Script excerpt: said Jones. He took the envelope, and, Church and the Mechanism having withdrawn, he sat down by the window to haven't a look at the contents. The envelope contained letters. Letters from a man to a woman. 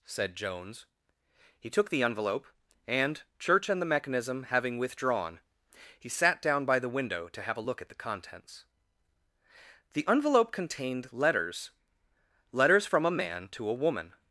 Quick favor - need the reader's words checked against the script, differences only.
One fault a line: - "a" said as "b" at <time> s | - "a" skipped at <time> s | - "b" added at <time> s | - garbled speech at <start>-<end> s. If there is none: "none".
- "haven't" said as "have" at 7.4 s